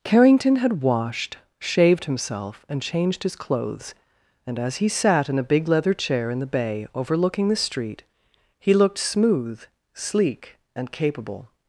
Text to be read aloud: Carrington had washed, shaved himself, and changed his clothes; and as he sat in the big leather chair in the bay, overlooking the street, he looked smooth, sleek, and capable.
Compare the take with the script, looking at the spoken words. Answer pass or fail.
fail